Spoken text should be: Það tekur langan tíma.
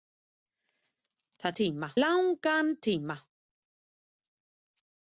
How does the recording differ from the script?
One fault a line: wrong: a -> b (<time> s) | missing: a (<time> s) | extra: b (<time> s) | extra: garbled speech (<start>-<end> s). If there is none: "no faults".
wrong: tekur -> tíma (1.6 s)